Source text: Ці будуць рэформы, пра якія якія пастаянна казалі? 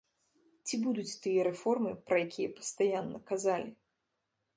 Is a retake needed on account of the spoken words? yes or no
yes